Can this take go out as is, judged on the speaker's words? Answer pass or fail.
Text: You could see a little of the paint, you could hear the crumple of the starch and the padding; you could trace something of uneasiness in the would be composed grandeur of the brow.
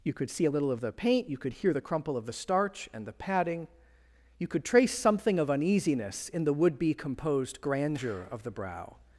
pass